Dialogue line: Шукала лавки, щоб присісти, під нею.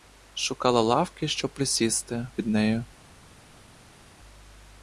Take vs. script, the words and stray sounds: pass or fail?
pass